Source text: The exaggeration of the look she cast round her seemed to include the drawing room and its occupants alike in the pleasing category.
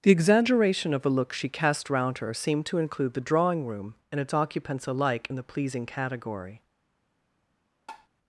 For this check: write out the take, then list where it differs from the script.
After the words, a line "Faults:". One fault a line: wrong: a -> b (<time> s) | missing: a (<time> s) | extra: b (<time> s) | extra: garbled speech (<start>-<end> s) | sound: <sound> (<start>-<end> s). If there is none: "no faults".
The exaggeration of a look she cast round her seemed to include the drawing room and its occupants alike in the pleasing category.
Faults:
wrong: the -> a (1.1 s)
sound: tap (7.9-8.1 s)